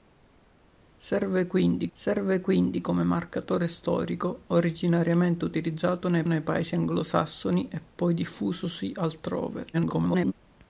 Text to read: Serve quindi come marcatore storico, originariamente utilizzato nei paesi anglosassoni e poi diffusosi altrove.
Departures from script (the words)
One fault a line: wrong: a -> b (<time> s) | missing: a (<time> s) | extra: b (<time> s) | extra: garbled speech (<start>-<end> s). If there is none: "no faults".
extra: serve quindi (1.9 s)
extra: nei (6.2 s)
extra: garbled speech (9.7-10.3 s)